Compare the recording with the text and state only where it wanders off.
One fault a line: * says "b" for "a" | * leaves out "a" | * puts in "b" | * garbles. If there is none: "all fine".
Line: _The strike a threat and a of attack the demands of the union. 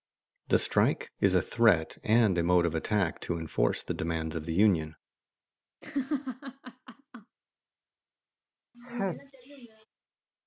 * puts in "is"
* puts in "mode"
* puts in "to enforce"